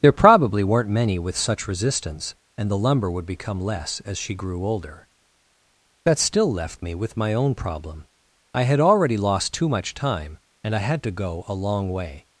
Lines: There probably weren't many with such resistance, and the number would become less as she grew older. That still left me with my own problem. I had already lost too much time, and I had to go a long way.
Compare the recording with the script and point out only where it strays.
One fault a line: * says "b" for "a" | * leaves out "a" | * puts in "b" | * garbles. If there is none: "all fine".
* says "lumber" for "number"